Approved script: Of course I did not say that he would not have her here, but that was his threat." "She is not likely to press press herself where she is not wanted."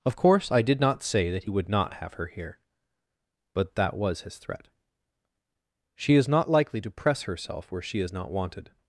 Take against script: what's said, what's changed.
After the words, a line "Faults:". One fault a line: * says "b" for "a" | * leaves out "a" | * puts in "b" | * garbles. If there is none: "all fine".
Of course I did not say that he would not have her here, but that was his threat." "She is not likely to press herself where she is not wanted."
Faults:
* leaves out "press"